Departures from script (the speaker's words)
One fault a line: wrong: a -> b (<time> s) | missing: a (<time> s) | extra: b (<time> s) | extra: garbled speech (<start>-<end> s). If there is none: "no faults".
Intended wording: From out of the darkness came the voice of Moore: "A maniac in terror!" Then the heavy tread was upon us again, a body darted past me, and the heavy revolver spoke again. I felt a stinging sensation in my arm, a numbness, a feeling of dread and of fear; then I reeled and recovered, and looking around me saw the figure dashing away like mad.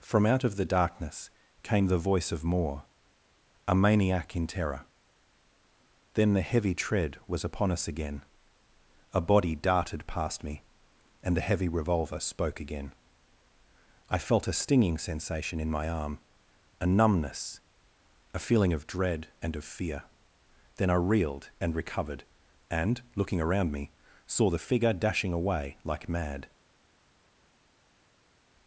no faults